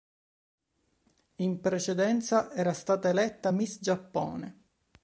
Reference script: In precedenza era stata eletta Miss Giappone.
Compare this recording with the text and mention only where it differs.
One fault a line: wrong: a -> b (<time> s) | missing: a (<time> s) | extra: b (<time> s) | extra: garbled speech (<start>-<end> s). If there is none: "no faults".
no faults